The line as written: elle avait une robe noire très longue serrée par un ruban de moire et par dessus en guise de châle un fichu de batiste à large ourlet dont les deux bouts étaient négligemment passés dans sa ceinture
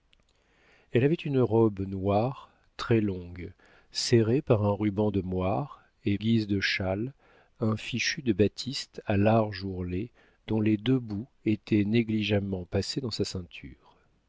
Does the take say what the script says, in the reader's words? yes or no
no